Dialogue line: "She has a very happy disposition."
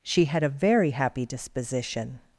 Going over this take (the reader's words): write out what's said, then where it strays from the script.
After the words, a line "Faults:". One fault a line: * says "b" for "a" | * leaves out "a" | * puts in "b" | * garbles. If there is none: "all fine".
"She had a very happy disposition."
Faults:
* says "had" for "has"